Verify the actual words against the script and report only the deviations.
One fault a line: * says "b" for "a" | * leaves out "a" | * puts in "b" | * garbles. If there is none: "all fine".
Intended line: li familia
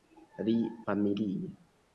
all fine